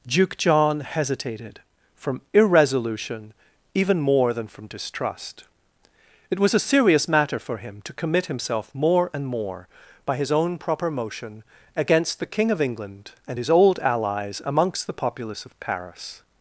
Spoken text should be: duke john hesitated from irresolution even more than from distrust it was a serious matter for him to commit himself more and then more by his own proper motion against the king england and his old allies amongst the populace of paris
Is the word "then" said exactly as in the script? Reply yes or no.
no